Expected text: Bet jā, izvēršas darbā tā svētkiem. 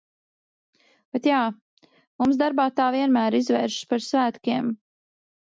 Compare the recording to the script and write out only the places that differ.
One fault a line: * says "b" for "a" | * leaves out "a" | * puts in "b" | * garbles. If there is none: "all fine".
* says "mums" for "izvēršas"
* puts in "vienmēr izvēršas par"